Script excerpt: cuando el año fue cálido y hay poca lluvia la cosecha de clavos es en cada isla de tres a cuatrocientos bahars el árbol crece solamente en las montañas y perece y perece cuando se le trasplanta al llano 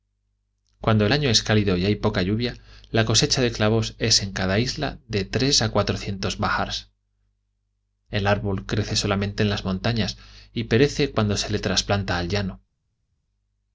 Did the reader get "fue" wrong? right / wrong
wrong